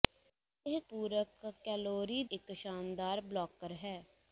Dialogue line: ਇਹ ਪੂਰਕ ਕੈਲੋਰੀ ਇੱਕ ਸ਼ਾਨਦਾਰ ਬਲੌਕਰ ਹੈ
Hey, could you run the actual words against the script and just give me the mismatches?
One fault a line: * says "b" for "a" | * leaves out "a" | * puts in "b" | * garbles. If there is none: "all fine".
all fine